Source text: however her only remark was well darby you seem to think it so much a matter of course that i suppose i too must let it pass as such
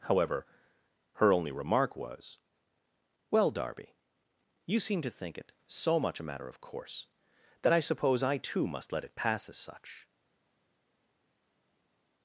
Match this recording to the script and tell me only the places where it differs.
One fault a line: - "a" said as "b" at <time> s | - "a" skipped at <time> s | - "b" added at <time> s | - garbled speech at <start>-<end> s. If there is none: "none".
none